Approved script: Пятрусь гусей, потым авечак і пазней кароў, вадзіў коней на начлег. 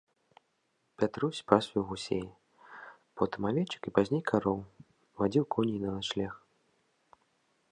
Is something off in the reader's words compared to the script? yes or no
yes